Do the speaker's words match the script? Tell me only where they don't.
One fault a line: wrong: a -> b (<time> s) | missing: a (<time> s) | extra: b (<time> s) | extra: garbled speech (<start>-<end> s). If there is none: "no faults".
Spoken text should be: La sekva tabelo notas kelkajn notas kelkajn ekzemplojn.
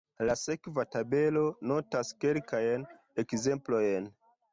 missing: notas kelkajn (2.9 s)